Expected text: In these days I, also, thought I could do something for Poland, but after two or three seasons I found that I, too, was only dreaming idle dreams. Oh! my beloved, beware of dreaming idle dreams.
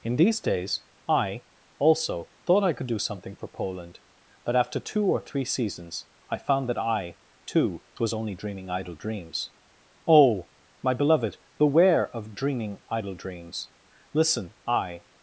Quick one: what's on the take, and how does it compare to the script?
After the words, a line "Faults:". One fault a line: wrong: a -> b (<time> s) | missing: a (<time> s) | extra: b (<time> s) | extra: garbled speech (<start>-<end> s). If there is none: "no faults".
In these days I, also, thought I could do something for Poland, but after two or three seasons I found that I, too, was only dreaming idle dreams. Oh! my beloved, beware of dreaming idle dreams. Listen! I
Faults:
extra: Listen I (14.1 s)